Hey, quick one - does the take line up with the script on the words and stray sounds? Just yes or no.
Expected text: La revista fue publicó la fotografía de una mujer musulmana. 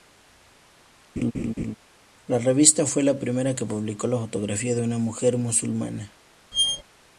no